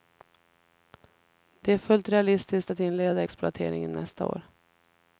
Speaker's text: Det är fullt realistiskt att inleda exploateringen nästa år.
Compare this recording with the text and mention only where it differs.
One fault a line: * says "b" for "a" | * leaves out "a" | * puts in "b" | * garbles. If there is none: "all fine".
all fine